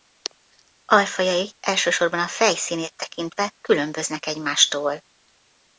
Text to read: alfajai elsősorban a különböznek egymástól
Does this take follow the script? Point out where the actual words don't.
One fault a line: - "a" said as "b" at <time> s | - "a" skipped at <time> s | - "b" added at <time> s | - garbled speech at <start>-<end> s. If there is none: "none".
- "fej színét tekintve" added at 2.3 s